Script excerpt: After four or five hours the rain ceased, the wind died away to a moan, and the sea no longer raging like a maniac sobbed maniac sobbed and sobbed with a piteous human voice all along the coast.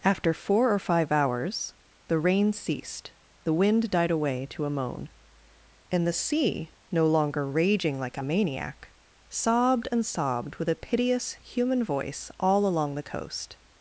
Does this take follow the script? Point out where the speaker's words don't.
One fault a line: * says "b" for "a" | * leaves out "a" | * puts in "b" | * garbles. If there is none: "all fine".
* leaves out "maniac sobbed"